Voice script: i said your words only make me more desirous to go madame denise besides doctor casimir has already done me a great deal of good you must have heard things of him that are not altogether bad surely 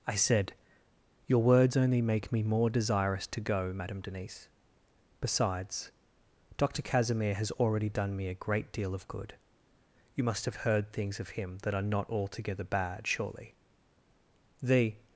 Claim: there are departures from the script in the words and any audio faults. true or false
true